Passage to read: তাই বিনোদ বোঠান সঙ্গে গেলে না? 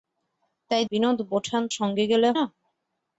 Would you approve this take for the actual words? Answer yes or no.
yes